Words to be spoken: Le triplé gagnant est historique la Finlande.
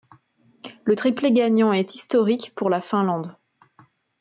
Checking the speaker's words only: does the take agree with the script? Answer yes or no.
no